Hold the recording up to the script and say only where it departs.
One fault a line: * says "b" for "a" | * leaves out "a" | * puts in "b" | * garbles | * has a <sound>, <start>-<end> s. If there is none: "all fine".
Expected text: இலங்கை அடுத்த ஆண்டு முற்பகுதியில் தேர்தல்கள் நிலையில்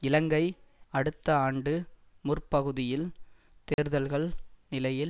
* has a dropout, 3.7-3.8 s